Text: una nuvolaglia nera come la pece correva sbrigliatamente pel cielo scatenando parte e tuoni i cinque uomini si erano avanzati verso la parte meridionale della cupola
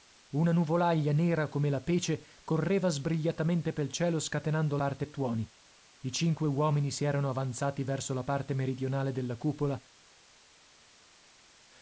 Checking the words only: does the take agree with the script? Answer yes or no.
yes